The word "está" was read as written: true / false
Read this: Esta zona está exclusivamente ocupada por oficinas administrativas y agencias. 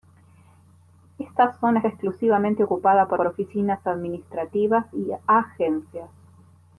false